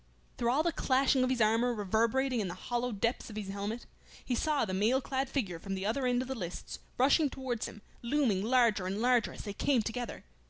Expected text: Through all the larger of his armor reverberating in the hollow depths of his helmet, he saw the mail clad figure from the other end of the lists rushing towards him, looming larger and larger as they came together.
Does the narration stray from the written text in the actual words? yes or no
yes